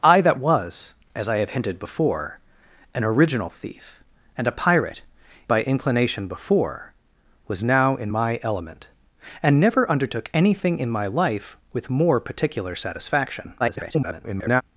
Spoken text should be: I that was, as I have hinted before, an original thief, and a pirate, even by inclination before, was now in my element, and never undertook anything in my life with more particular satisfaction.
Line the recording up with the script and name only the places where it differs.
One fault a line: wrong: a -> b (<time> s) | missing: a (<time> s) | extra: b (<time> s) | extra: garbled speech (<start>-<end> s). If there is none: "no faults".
missing: even (5.0 s)
extra: garbled speech (13.6-14.6 s)